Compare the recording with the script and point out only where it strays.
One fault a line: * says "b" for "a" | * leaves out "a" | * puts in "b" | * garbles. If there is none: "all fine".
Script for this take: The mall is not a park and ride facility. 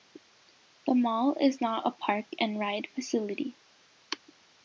all fine